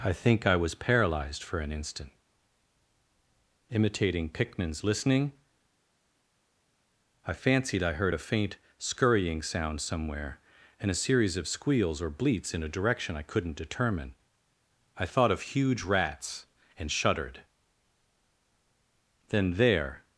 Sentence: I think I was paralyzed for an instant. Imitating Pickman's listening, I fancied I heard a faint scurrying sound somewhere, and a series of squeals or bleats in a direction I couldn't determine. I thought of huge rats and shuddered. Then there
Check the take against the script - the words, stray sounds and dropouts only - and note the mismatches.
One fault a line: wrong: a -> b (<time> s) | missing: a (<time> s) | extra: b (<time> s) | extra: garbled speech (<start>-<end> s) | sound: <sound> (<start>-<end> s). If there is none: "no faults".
no faults